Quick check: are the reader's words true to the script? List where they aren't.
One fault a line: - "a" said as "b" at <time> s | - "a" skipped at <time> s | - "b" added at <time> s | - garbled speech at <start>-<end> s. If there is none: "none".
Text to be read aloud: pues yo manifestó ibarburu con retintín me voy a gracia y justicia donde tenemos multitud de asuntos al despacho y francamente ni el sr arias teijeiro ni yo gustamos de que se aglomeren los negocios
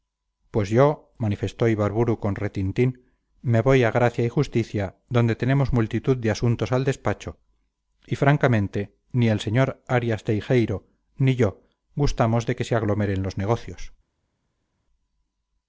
none